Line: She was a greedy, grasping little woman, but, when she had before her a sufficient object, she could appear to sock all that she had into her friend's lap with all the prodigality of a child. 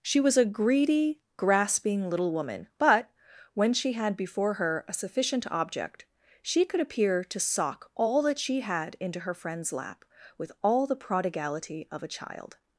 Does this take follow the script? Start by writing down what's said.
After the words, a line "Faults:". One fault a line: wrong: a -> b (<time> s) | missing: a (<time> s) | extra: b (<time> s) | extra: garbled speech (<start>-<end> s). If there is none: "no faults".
She was a greedy, grasping little woman, but, when she had before her a sufficient object, she could appear to sock all that she had into her friend's lap with all the prodigality of a child.
Faults:
no faults